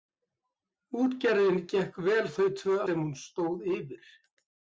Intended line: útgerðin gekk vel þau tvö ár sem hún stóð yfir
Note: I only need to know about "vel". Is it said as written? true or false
true